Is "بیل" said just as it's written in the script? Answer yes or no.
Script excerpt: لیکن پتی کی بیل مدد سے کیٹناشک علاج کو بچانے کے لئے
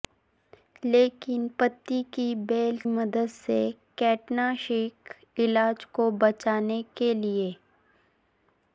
yes